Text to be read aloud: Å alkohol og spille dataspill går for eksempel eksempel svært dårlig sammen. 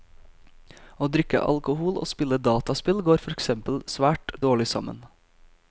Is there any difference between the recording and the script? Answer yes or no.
yes